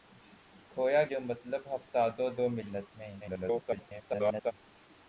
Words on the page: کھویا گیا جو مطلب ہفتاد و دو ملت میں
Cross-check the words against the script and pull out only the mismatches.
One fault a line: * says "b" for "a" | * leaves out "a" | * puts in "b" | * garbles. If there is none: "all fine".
* leaves out "گیا"
* garbles